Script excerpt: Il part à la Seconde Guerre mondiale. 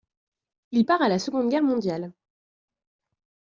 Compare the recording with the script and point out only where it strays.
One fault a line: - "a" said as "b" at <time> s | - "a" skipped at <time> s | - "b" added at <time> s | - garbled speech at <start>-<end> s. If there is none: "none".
none